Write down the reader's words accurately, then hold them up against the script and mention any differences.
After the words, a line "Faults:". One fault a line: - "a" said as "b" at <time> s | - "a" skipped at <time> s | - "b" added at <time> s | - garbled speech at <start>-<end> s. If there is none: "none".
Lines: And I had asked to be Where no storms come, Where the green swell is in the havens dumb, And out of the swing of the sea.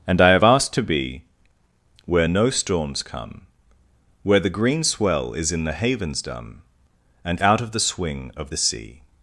And I have asked to be Where no storms come, Where the green swell is in the havens dumb, And out of the swing of the sea.
Faults:
- "had" said as "have" at 0.3 s